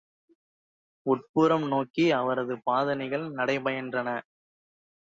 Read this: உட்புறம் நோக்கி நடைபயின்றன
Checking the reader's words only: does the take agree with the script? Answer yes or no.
no